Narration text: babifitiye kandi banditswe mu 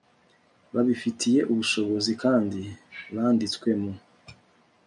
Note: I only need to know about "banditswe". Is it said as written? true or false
true